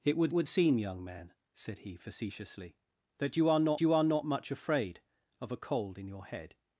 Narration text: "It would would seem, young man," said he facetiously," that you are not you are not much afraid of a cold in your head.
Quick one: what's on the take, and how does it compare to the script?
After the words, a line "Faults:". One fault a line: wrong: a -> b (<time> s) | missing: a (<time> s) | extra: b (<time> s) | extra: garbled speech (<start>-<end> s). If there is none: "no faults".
"It would would seem, young man," said he facetiously," that you are not you are not much afraid of a cold in your head.
Faults:
no faults